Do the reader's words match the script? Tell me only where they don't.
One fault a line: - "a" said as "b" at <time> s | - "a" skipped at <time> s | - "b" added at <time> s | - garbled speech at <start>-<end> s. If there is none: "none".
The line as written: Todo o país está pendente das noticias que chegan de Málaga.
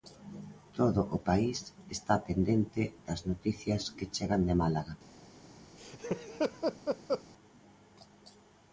none